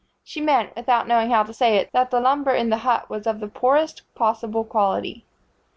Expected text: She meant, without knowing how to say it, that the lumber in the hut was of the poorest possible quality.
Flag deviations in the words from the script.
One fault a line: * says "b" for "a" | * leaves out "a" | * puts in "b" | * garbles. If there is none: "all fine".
all fine